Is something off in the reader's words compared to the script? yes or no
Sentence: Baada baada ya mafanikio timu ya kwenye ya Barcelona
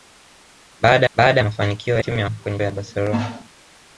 no